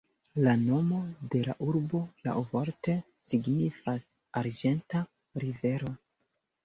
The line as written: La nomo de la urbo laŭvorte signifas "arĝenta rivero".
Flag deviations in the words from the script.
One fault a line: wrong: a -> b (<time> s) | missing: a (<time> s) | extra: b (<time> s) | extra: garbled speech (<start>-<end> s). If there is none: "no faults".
no faults